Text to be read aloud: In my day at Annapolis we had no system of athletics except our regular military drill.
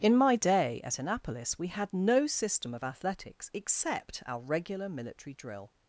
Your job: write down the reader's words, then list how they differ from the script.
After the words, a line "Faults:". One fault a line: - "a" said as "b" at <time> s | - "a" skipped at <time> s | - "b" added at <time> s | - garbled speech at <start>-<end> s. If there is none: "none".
In my day at Annapolis we had no system of athletics except our regular military drill.
Faults:
none